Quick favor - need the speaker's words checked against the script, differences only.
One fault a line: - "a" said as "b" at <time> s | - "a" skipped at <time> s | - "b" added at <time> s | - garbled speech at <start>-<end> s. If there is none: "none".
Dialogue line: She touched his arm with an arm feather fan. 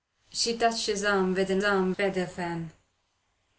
none